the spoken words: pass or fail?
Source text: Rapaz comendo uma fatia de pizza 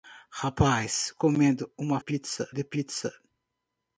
fail